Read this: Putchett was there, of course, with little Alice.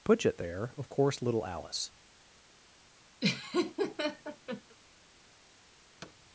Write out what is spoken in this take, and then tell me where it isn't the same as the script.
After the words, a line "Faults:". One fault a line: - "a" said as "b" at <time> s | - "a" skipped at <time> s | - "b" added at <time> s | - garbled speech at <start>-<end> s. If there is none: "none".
Putchett there, of course, little Alice.
Faults:
- "was" skipped at 0.4 s
- "with" skipped at 1.2 s